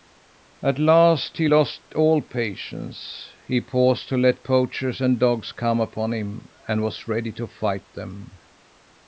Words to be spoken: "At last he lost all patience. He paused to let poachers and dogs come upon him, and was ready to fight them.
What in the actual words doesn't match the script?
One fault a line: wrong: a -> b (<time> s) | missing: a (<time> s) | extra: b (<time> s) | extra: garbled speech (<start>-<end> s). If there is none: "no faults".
no faults